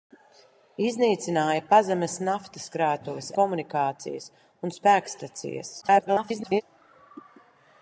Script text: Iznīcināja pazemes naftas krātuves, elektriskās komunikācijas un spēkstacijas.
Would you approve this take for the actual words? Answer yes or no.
no